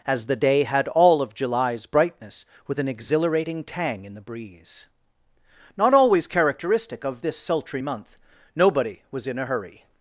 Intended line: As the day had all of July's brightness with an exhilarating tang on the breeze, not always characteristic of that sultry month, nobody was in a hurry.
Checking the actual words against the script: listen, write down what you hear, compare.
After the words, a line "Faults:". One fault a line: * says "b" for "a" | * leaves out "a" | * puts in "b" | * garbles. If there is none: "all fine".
As the day had all of July's brightness with an exhilarating tang in the breeze, not always characteristic of this sultry month, nobody was in a hurry.
Faults:
* says "in" for "on"
* says "this" for "that"